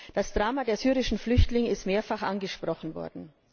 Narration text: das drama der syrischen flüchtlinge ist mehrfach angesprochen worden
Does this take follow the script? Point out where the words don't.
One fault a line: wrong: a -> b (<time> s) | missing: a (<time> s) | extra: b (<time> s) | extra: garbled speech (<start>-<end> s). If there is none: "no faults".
no faults